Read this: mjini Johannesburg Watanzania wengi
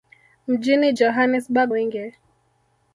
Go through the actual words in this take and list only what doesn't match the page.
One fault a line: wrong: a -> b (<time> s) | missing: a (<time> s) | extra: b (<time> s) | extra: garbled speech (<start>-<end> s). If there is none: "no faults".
missing: Watanzania (1.7 s)